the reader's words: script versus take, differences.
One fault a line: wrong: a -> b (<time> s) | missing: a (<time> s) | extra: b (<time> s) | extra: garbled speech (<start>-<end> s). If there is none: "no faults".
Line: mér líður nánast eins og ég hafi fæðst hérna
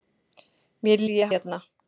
missing: líður nánast eins (1.0 s)
missing: hafi fæðst (1.3 s)